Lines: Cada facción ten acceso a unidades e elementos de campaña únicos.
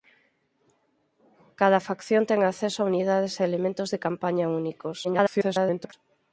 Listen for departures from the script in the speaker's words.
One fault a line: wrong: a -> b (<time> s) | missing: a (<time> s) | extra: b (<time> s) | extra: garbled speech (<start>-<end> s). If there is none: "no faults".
extra: garbled speech (5.0-5.9 s)